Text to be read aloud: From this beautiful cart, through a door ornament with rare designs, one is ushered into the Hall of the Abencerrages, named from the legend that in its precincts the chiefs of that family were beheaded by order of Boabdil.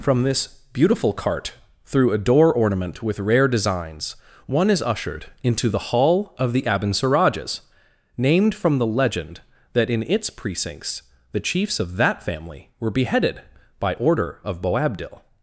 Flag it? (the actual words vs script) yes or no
no